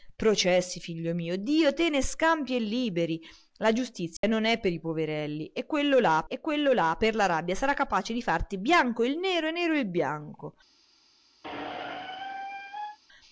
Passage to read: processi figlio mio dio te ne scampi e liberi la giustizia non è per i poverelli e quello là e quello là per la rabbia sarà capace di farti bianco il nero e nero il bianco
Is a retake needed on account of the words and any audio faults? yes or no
yes